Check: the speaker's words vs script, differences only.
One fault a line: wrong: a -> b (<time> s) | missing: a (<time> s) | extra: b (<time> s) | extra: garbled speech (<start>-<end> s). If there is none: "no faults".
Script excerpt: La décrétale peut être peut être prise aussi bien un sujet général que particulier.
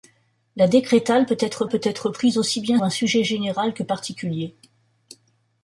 no faults